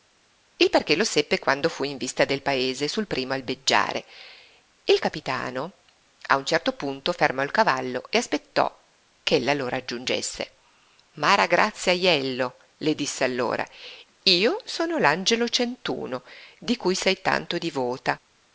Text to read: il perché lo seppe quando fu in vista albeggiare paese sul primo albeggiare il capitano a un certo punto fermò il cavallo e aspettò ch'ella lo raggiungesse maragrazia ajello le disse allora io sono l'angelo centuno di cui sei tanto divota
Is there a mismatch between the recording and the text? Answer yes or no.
yes